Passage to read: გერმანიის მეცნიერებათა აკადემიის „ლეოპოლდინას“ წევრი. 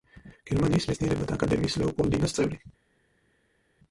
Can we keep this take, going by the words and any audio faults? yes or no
yes